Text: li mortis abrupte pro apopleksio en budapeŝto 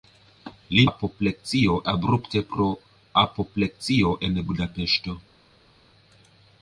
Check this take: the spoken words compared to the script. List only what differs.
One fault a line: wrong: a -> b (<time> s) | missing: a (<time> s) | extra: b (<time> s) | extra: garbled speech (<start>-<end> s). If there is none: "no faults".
wrong: mortis -> apopleksio (0.9 s)